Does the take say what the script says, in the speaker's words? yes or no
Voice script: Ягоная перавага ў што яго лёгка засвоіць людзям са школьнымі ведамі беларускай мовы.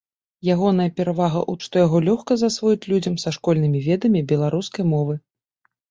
yes